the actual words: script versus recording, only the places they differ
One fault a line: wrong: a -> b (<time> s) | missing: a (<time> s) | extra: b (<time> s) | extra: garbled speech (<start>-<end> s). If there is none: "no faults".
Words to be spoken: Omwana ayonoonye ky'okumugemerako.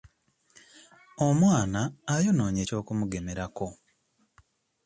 no faults